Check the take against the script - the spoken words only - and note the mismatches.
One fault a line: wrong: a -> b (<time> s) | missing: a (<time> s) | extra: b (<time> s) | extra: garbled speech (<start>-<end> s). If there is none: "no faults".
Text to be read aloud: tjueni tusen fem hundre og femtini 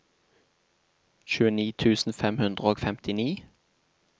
no faults